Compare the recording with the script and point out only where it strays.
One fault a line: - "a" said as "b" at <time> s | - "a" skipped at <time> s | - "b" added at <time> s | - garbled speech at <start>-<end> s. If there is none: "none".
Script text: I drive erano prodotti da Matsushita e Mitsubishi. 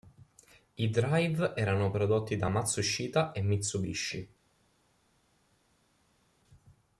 none